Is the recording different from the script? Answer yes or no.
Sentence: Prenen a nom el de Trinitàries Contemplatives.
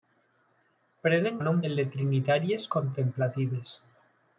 no